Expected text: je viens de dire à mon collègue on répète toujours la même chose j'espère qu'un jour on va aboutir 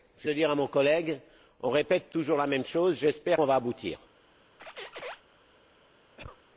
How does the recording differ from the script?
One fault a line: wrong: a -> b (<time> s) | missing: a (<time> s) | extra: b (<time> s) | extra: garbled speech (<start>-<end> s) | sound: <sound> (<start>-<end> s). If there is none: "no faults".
missing: viens (0.3 s)
missing: qu'un jour (3.4 s)
sound: squeak (4.6-5.2 s)
sound: cough (6.2-6.4 s)